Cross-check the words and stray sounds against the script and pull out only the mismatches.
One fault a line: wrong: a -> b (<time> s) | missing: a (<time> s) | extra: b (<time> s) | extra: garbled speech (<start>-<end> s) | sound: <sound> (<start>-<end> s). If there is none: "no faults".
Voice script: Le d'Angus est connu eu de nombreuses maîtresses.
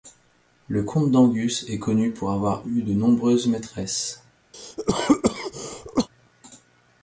extra: comte (0.8 s)
extra: pour avoir (2.1 s)
sound: cough (4.5-6.1 s)